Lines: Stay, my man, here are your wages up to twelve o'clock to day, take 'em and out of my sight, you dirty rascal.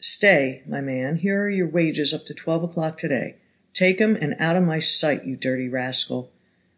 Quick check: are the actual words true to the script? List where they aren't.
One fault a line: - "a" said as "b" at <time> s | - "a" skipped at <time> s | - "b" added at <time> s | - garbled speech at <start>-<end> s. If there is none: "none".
none